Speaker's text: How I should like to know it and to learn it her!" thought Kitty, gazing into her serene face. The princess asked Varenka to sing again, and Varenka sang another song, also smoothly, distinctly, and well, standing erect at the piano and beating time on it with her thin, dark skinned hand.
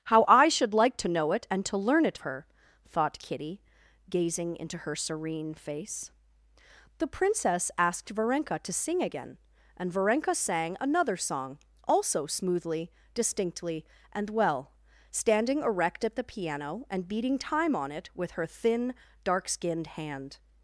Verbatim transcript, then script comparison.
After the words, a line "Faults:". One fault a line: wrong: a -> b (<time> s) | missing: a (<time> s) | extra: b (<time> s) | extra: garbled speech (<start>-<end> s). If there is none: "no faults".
How I should like to know it and to learn it her!" thought Kitty, gazing into her serene face. The princess asked Varenka to sing again, and Varenka sang another song, also smoothly, distinctly, and well, standing erect at the piano and beating time on it with her thin, dark skinned hand.
Faults:
no faults